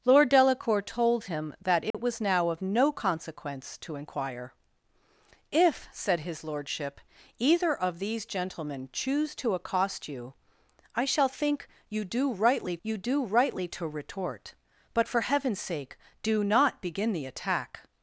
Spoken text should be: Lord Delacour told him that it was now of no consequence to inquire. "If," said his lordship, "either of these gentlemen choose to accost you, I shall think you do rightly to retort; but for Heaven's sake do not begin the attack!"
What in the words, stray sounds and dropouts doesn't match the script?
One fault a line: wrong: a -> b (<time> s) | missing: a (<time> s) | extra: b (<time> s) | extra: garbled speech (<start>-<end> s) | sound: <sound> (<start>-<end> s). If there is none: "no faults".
sound: dropout (1.9-1.9 s)
extra: you do rightly (12.8 s)